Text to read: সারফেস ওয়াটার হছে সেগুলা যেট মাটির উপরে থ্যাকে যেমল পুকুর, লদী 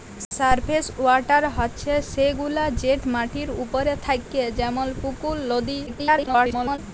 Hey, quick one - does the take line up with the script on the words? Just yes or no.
no